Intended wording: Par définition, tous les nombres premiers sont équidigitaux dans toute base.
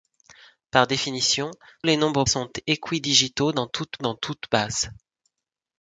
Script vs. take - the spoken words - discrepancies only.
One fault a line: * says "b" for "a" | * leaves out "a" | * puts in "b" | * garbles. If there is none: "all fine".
* leaves out "tous"
* leaves out "premiers"
* puts in "dans toute"